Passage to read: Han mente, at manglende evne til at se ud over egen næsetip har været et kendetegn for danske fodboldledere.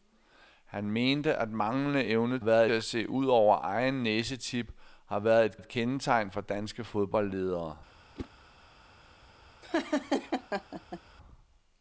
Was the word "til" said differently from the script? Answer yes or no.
yes